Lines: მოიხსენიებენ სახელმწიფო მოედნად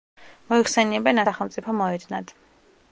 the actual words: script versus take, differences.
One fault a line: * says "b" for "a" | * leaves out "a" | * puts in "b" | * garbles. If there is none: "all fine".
all fine